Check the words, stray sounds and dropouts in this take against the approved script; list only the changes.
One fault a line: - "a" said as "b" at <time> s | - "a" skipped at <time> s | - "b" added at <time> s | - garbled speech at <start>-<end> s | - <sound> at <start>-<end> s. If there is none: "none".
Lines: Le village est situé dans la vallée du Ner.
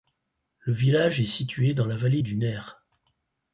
none